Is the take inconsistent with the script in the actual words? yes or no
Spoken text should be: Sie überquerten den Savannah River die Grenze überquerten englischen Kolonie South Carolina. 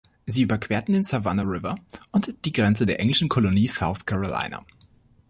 yes